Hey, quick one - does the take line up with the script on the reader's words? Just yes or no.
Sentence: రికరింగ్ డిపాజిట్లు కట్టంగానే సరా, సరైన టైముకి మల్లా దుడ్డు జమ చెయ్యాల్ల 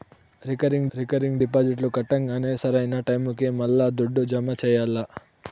no